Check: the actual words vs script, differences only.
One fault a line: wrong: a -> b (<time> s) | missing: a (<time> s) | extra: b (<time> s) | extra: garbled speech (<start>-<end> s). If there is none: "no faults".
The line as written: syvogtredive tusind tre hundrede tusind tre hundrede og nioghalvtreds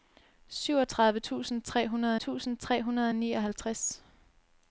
no faults